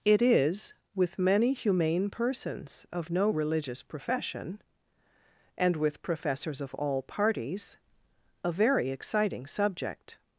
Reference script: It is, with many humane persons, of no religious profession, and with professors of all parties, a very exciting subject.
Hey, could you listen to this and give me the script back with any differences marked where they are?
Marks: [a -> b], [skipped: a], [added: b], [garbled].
It is, with many humane persons, of no religious profession, and with professors of all parties, a very exciting subject.